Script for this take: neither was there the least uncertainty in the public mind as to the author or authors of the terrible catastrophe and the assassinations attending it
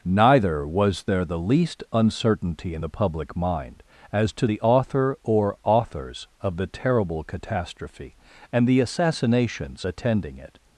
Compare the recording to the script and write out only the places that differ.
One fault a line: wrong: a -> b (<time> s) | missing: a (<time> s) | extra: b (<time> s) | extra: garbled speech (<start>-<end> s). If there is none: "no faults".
no faults